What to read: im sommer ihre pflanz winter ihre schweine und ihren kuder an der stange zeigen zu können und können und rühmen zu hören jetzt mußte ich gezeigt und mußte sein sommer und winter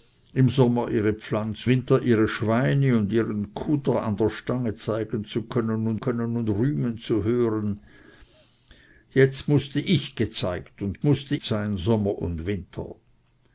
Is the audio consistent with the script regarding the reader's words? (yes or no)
yes